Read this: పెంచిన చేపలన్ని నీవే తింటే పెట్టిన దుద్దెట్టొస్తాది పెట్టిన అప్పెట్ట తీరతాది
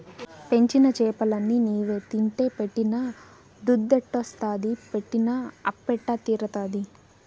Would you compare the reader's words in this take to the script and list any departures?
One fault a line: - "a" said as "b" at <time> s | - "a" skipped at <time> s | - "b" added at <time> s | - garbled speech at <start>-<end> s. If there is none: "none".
none